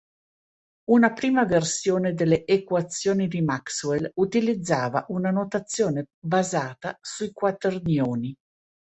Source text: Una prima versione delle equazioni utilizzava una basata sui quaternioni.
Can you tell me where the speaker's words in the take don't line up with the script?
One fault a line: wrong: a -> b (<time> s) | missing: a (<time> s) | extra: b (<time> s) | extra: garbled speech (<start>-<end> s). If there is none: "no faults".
extra: di Maxwell (3.3 s)
extra: notazione (5.3 s)